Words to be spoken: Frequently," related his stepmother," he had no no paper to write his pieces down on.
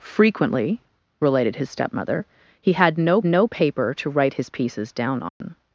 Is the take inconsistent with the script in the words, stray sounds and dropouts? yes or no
yes